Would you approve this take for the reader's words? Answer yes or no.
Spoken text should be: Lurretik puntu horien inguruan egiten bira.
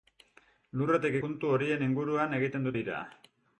yes